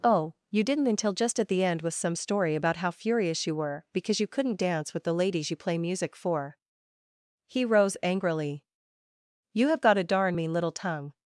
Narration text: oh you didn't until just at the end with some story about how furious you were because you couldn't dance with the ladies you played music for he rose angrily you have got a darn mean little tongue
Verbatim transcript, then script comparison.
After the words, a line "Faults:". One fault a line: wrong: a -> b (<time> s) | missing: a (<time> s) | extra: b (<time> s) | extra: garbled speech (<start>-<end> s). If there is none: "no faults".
oh you didn't until just at the end with some story about how furious you were because you couldn't dance with the ladies you play music for he rose angrily you have got a darn mean little tongue
Faults:
wrong: played -> play (5.5 s)